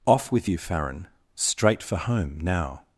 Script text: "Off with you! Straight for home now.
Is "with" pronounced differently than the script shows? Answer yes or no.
no